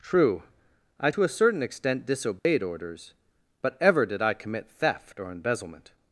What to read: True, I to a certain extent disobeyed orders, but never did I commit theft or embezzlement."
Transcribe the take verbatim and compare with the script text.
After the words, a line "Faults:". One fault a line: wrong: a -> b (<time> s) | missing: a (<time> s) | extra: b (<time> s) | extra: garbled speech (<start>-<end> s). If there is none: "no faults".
True, I to a certain extent disobeyed orders, but ever did I commit theft or embezzlement."
Faults:
wrong: never -> ever (3.8 s)